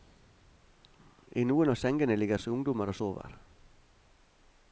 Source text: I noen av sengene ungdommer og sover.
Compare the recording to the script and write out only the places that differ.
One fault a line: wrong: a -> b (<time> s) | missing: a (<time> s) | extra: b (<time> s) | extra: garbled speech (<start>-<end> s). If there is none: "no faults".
extra: ligger (2.2 s)